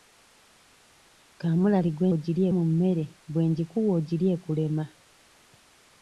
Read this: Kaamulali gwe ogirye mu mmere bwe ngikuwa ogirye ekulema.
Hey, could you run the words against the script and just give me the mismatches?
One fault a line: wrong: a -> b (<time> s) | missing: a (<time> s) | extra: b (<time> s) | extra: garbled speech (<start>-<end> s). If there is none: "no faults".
no faults